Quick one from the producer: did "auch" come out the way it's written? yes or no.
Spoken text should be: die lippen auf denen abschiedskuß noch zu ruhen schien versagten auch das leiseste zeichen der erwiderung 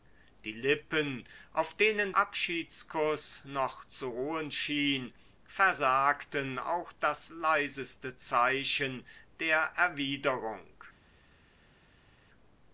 yes